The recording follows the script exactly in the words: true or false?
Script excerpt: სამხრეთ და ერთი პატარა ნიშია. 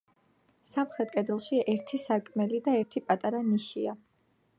false